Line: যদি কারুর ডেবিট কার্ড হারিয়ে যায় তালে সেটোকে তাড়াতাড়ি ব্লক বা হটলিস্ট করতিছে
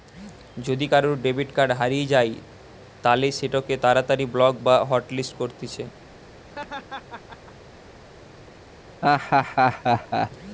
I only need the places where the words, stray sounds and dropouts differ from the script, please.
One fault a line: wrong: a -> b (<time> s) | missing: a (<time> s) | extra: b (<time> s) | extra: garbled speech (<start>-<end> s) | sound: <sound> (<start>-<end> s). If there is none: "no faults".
sound: laugh (6.4-7.7 s)
sound: laugh (9.0-10.3 s)